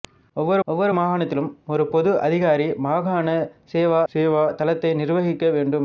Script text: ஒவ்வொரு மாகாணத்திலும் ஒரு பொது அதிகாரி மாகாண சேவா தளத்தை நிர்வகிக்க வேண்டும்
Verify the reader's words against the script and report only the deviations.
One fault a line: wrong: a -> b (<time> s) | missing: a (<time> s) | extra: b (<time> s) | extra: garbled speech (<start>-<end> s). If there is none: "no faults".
extra: ஒவ்வொரு (0.7 s)
extra: சேவா (4.1 s)